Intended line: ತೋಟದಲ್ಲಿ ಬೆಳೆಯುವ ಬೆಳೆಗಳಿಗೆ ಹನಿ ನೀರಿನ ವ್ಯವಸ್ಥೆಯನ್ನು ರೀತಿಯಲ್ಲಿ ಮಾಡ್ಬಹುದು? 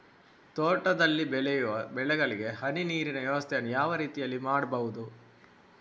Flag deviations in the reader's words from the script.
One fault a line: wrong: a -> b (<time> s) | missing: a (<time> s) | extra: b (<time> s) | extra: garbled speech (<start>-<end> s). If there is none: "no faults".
extra: ಯಾವ (3.7 s)